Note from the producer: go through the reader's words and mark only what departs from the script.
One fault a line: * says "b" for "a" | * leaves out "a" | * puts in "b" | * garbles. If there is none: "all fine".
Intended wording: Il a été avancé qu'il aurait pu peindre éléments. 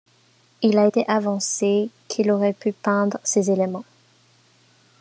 * puts in "ces"